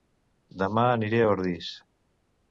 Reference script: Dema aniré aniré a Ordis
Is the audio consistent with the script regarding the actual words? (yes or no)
no